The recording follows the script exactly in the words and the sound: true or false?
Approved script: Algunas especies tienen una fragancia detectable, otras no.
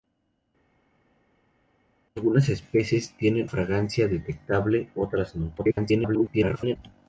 false